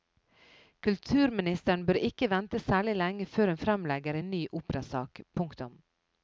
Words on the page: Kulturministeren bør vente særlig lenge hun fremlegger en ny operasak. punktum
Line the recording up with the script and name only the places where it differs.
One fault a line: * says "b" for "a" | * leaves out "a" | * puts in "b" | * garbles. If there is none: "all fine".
* puts in "ikke"
* puts in "før"